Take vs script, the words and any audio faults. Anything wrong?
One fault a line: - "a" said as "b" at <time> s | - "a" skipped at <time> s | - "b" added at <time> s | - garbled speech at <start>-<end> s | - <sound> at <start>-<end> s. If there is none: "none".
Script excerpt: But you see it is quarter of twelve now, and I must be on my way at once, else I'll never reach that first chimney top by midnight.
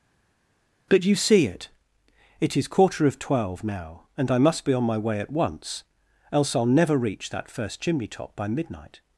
- "it" added at 2.4 s